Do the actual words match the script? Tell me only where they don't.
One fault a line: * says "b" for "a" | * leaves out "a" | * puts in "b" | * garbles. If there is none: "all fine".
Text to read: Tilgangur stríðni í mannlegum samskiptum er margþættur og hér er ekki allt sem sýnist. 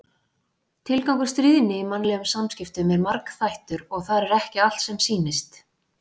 * says "þar" for "hér"